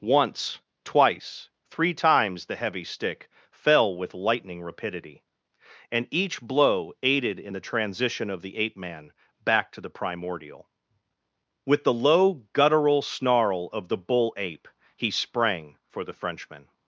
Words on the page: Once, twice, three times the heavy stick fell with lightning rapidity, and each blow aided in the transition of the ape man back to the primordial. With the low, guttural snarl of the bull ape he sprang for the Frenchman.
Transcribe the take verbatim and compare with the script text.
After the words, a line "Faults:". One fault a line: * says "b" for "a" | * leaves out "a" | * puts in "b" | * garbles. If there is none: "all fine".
Once, twice, three times the heavy stick fell with lightning rapidity, and each blow aided in the transition of the ape man back to the primordial. With the low, guttural snarl of the bull ape he sprang for the Frenchman.
Faults:
all fine